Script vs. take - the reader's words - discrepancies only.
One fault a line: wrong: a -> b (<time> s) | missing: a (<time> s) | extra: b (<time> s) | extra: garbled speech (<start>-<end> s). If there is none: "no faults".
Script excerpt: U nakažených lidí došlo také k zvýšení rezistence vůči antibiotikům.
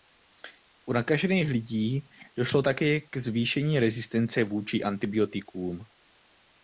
no faults